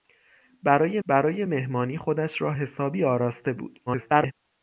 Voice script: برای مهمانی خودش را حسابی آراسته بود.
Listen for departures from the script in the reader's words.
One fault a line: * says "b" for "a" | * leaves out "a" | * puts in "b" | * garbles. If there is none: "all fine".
* puts in "برای"
* garbles